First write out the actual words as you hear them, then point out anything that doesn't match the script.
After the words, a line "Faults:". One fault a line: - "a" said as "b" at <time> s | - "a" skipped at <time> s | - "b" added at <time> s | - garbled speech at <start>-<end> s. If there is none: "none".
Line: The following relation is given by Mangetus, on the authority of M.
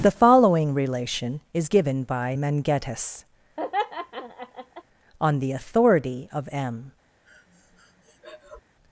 The following relation is given by Mangetus, on the authority of M.
Faults:
none